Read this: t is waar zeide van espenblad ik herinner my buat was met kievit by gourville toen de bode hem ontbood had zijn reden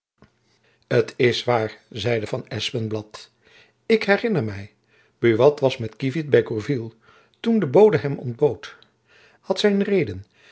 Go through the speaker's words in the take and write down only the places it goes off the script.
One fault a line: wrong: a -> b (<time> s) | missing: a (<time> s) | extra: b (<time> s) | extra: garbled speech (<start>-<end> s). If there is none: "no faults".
no faults